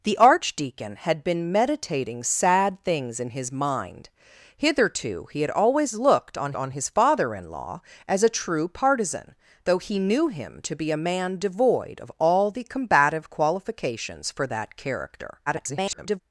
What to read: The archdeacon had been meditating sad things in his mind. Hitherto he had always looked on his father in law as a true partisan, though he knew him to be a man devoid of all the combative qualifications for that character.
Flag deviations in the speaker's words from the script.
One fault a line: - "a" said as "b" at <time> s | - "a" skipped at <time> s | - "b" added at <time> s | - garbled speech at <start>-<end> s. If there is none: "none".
- "on" added at 6.6 s
- garbled speech at 15.5-16.2 s